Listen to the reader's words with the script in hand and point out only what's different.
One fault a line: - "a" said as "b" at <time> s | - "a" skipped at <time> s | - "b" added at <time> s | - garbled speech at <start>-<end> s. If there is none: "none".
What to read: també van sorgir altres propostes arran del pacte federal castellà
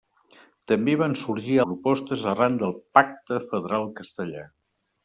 - "altres" skipped at 1.6 s